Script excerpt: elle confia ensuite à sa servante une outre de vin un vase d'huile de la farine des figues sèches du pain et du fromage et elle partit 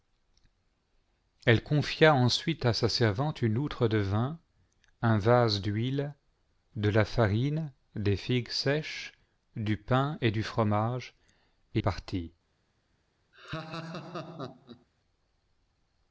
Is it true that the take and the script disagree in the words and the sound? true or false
true